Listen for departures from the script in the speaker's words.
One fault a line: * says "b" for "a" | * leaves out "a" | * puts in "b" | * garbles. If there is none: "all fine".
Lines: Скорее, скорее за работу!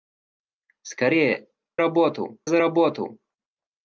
* says "работу" for "скорее"